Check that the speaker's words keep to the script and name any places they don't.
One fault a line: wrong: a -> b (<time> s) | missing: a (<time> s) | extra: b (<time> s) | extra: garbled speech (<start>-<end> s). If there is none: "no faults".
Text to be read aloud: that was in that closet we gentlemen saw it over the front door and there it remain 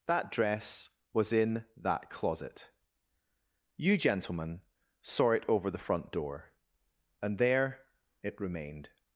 extra: dress (0.3 s)
wrong: we -> you (3.8 s)
wrong: remain -> remained (8.4 s)